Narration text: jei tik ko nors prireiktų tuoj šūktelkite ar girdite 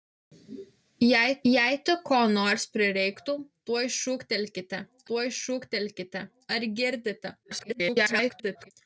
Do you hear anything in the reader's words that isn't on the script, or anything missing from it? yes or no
yes